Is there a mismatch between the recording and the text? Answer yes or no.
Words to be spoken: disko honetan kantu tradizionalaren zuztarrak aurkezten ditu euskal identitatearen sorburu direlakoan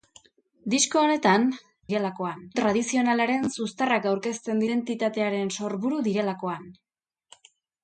yes